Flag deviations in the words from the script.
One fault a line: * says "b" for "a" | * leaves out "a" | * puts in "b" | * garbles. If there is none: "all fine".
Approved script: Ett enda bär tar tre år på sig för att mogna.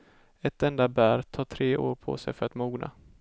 all fine